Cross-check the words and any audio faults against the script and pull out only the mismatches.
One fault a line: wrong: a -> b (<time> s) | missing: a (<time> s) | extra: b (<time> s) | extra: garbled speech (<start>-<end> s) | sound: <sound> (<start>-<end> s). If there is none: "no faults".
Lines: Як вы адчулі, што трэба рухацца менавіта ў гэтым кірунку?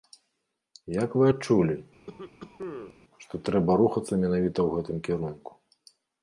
sound: cough (2.1-2.9 s)